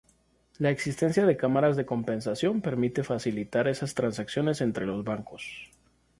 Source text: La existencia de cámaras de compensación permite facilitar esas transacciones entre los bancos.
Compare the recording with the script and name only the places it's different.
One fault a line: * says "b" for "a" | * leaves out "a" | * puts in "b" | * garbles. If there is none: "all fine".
all fine